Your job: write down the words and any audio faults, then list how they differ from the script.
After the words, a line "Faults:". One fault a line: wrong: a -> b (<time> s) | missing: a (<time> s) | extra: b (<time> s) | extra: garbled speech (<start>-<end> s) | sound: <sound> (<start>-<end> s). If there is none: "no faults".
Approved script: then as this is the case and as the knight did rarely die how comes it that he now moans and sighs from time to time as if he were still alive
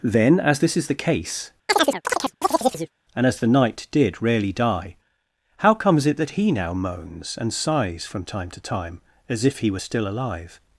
then as this is the case and as the knight did rarely die how comes it that he now moans and sighs from time to time as if he were still alive
Faults:
sound: chirp (1.7-2.9 s)